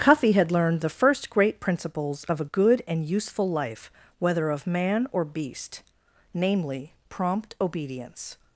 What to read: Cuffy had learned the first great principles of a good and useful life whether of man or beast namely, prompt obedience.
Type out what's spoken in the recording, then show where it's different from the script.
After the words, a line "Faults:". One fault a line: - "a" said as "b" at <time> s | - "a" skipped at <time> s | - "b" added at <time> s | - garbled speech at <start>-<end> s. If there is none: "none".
Cuffy had learned the first great principles of a good and useful life whether of man or beast namely, prompt obedience.
Faults:
none